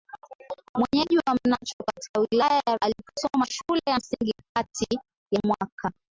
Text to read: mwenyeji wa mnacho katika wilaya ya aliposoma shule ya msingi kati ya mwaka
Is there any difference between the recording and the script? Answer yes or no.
no